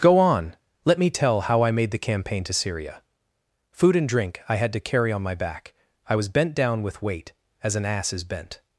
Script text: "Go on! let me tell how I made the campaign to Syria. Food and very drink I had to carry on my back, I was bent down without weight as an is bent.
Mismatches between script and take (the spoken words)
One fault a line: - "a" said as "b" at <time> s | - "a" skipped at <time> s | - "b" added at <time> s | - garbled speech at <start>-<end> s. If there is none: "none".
- "very" skipped at 4.1 s
- "without" said as "with" at 6.8 s
- "ass" added at 7.8 s